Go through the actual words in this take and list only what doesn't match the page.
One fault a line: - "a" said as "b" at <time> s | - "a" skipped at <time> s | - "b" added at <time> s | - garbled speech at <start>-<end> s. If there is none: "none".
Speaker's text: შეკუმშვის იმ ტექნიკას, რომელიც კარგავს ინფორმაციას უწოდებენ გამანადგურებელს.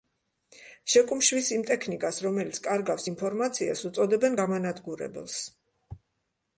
none